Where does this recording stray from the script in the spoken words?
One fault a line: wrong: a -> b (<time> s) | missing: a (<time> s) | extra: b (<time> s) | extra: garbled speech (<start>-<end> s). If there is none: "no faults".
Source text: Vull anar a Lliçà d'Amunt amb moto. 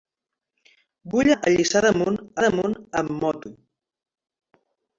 missing: anar (1.3 s)
extra: d'Amunt (2.5 s)